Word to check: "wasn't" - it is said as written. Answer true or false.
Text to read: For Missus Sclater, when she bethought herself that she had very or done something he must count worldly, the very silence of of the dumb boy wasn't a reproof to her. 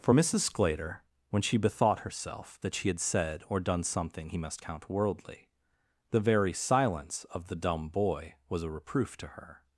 false